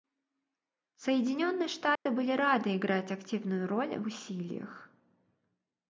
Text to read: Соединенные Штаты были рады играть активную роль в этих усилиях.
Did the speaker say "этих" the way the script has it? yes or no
no